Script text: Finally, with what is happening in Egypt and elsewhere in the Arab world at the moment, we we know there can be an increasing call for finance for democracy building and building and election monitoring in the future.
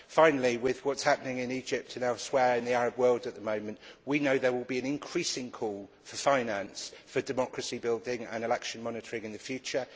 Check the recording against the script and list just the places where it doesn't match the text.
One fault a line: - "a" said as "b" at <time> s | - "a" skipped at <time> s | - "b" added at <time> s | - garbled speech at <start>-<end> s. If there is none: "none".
- "we" skipped at 4.2 s
- "can" said as "will" at 4.5 s
- "building and" skipped at 8.4 s